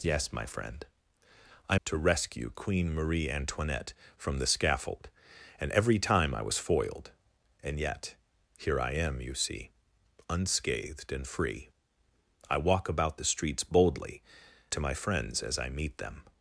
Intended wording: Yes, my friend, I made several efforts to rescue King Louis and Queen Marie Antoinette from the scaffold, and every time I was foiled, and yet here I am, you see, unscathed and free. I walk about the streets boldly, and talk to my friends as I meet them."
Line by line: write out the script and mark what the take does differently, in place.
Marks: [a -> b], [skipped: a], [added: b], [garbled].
Yes, my friend, I [skipped: made several efforts] to rescue [skipped: King Louis and] Queen Marie Antoinette from the scaffold, and every time I was foiled, and yet here I am, you see, unscathed and free. I walk about the streets boldly, [skipped: and talk] to my friends as I meet them."